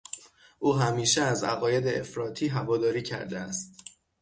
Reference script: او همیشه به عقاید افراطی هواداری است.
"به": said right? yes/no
no